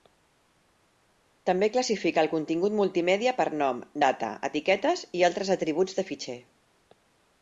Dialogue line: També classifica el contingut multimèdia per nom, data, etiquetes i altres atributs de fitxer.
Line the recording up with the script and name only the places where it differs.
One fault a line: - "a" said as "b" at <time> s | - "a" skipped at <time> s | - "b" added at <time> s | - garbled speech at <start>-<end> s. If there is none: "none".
none